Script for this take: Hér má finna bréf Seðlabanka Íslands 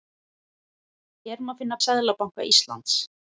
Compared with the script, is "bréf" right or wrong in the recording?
wrong